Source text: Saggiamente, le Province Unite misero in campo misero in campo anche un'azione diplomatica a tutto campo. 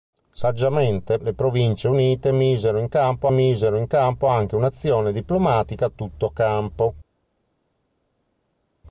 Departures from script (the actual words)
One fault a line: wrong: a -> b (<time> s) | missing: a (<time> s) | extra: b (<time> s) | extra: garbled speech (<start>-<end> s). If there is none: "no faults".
no faults